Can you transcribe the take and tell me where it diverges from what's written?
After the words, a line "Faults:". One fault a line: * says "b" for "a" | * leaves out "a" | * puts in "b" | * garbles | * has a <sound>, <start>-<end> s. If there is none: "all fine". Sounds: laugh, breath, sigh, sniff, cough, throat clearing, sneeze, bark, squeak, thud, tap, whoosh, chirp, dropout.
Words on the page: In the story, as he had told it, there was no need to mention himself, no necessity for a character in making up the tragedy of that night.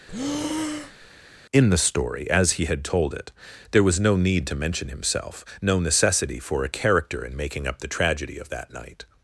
In the story, as he had told it, there was no need to mention himself, no necessity for a character in making up the tragedy of that night.
Faults:
* has a breath, 0.1-1.1 s